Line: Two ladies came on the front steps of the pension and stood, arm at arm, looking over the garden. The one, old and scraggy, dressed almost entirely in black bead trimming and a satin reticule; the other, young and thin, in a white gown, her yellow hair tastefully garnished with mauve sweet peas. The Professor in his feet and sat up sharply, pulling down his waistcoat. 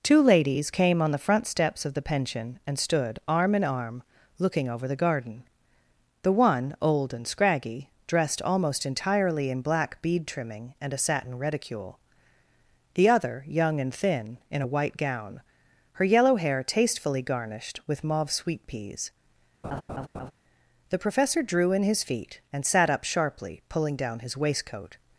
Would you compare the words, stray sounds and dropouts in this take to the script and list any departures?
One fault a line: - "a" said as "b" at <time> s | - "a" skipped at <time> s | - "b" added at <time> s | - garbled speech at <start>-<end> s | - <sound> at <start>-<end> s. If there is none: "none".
- "at" said as "in" at 3.5 s
- laugh at 19.6-20.3 s
- "drew" added at 21.4 s